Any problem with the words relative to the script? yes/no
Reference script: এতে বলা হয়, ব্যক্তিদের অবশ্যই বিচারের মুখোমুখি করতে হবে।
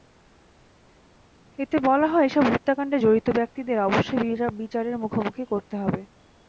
yes